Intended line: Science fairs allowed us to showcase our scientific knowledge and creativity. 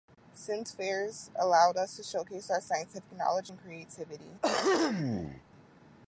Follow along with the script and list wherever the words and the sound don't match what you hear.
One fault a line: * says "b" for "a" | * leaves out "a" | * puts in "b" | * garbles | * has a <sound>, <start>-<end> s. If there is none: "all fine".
* has a throat clearing, 4.4-5.4 s